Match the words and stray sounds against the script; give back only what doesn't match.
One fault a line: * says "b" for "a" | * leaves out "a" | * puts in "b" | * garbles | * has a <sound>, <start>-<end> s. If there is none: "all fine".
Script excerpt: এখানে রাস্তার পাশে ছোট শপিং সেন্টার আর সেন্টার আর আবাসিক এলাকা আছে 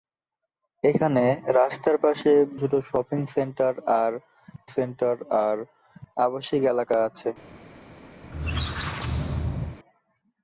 * has a squeak, 8.2-9.8 s